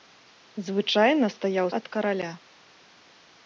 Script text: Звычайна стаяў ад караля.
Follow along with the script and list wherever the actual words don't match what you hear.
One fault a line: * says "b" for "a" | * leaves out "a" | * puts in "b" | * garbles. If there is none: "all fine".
all fine